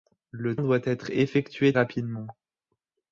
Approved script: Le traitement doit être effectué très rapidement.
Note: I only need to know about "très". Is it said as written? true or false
false